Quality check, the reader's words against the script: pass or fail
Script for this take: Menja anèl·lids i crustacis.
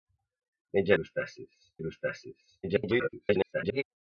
fail